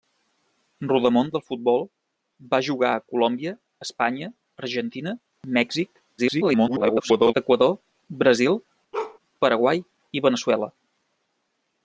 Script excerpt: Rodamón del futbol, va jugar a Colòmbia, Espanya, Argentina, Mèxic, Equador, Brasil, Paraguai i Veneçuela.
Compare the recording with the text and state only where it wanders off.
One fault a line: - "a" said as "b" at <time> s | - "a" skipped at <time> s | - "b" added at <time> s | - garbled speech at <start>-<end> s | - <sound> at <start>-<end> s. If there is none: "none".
- garbled speech at 6.2-7.3 s
- bark at 8.9-9.2 s